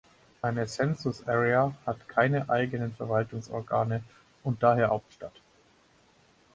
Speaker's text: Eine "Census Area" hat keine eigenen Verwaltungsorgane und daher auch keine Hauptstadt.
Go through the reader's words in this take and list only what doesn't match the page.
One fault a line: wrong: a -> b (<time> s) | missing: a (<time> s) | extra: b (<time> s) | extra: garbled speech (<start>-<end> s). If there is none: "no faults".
missing: auch keine (4.9 s)